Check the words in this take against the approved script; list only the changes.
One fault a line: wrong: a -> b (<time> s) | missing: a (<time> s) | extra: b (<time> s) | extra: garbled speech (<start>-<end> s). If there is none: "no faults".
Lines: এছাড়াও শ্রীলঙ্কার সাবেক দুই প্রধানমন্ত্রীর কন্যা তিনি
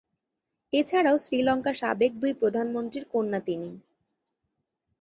no faults